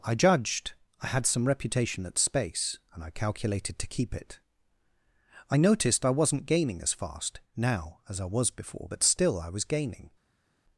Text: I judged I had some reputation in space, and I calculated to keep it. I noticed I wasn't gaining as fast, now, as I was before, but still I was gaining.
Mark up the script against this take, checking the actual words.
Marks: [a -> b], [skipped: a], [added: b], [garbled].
I judged I had some reputation [in -> at] space, and I calculated to keep it. I noticed I wasn't gaining as fast, now, as I was before, but still I was gaining.